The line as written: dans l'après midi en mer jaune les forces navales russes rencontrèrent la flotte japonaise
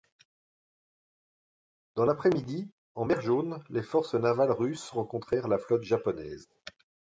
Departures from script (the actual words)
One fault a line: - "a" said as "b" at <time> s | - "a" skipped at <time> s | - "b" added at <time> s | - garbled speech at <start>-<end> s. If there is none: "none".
none